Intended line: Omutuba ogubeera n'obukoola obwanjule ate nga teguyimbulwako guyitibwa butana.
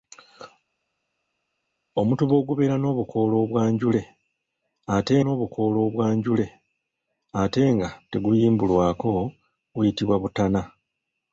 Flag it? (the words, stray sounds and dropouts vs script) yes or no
yes